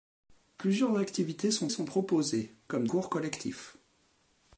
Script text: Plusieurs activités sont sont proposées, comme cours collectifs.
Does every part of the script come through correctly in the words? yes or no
yes